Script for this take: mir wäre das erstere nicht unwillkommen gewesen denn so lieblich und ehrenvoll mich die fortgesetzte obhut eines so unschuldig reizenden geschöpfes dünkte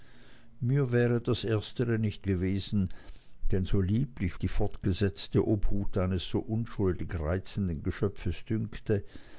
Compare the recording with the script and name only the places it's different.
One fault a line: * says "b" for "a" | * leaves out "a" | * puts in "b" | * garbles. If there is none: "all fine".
* leaves out "unwillkommen"
* leaves out "und ehrenvoll mich"